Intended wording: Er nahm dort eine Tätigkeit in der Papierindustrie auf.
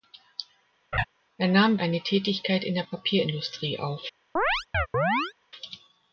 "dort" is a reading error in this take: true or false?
true